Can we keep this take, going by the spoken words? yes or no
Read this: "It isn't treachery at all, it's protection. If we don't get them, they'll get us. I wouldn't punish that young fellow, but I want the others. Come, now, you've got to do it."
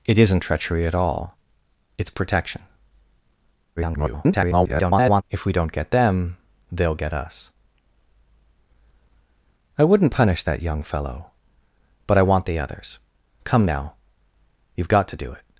no